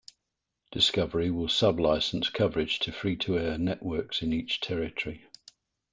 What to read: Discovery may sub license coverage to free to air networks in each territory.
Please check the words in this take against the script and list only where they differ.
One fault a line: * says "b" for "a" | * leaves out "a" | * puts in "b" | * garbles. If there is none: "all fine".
* says "will" for "may"